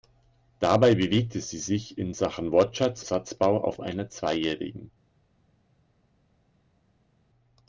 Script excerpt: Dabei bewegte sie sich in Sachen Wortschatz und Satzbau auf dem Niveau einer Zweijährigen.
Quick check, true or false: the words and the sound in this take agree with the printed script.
false